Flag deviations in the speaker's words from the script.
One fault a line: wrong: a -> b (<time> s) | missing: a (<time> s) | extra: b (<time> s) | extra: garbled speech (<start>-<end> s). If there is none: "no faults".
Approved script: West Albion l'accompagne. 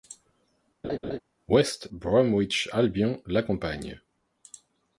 extra: Bromwich (1.9 s)